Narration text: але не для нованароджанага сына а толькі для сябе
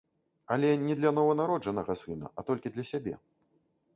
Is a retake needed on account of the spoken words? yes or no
no